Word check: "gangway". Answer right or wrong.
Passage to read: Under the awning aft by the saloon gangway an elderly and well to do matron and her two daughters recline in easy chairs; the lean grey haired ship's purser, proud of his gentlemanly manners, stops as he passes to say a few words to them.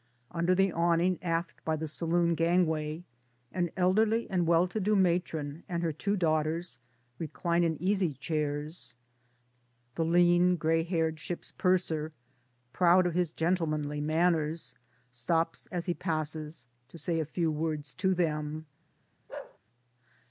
right